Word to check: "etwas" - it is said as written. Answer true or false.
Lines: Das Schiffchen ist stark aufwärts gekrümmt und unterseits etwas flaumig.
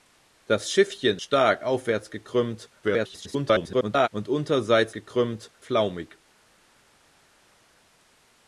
false